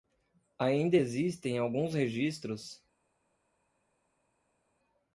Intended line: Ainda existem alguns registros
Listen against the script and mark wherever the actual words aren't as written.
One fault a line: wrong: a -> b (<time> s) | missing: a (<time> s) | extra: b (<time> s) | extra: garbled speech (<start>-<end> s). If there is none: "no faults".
no faults